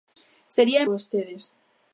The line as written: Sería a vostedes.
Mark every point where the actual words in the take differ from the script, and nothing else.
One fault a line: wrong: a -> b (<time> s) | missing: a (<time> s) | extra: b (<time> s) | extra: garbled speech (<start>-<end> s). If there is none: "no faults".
no faults